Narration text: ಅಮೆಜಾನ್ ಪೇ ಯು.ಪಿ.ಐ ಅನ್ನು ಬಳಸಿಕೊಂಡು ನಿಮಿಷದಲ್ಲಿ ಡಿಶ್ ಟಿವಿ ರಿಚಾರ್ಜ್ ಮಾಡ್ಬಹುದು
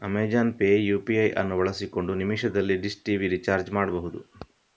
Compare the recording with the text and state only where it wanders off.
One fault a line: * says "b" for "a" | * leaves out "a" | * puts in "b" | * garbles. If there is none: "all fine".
all fine